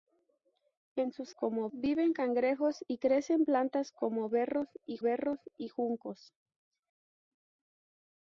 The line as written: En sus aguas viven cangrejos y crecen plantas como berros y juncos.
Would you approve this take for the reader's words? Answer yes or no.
no